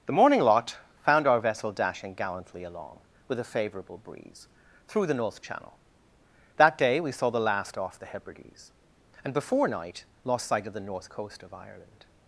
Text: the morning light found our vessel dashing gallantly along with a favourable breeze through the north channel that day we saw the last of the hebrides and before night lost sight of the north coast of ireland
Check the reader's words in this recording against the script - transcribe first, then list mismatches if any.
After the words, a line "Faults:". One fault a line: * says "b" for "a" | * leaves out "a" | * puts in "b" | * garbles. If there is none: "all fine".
the morning lot found our vessel dashing gallantly along with a favourable breeze through the north channel that day we saw the last off the hebrides and before night lost sight of the north coast of ireland
Faults:
* says "lot" for "light"
* says "off" for "of"